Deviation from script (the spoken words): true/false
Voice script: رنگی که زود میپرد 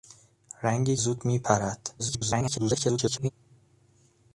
true